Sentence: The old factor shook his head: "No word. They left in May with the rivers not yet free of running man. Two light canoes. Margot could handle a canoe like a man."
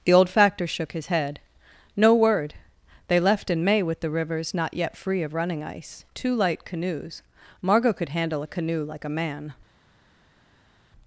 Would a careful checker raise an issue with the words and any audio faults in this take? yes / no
yes